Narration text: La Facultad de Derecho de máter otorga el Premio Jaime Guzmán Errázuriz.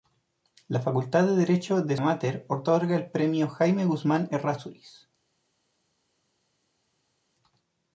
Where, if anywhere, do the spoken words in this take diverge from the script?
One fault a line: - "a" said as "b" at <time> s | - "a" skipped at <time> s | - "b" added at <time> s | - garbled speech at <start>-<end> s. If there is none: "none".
none